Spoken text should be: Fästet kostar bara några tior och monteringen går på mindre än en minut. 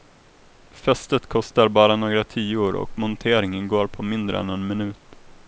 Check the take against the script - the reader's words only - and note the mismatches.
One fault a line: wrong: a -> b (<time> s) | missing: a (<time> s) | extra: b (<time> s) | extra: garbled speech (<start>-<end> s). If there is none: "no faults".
no faults